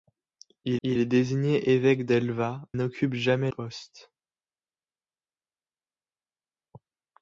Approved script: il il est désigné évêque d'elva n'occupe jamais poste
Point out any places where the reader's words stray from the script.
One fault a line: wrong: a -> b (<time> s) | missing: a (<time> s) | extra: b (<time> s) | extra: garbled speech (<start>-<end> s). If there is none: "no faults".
no faults